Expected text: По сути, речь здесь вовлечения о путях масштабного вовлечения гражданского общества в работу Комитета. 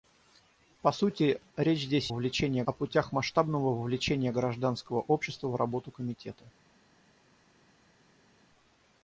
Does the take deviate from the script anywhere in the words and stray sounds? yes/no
no